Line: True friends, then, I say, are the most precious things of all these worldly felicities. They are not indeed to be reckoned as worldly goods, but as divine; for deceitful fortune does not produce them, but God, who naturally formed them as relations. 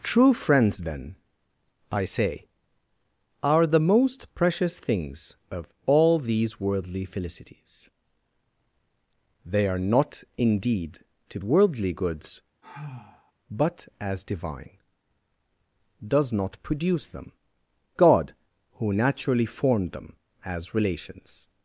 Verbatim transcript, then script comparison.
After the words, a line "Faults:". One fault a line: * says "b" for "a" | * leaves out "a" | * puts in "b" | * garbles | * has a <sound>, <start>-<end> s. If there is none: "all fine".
True friends, then, I say, are the most precious things of all these worldly felicities. They are not indeed to worldly goods, but as divine; does not produce them, God, who naturally formed them as relations.
Faults:
* leaves out "be reckoned as"
* has a sigh, 12.6-13.3 s
* leaves out "for deceitful fortune"
* leaves out "but"